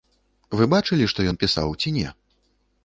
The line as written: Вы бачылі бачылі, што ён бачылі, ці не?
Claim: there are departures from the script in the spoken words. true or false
true